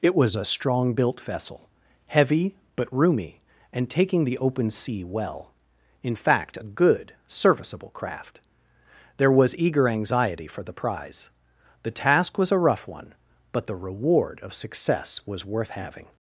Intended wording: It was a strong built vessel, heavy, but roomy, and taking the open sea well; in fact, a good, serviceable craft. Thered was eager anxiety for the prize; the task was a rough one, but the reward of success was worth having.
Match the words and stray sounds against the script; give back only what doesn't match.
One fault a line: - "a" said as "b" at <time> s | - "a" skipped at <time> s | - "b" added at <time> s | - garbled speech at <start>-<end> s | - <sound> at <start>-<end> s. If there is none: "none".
- "Thered" said as "There" at 9.2 s